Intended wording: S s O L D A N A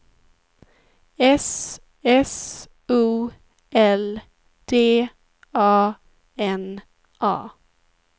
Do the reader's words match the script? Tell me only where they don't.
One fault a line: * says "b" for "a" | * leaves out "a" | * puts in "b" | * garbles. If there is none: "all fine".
all fine